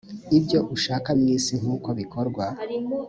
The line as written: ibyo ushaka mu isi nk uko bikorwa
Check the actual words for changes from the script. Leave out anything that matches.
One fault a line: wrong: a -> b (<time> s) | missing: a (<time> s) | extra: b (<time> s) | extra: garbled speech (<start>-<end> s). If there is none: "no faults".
no faults